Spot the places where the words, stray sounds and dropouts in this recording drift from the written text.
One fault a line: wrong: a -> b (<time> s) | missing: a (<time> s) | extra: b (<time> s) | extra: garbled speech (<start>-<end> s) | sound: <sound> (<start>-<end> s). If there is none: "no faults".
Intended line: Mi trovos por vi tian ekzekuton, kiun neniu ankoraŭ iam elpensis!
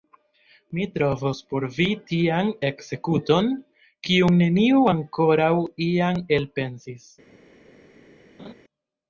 sound: laugh (8.4-8.5 s)